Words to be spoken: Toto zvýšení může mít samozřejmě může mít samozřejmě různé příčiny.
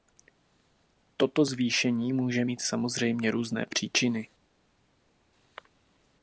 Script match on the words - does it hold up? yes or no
no